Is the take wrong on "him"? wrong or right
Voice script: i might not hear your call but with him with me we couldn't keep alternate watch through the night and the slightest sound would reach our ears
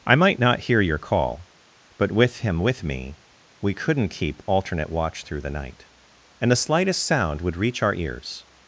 right